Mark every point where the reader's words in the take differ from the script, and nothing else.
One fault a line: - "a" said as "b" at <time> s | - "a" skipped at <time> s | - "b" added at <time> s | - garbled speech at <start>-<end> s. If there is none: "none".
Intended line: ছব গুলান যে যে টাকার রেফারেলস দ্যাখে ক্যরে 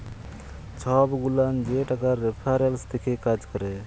- "যে" skipped at 1.8 s
- "কাজ" added at 3.3 s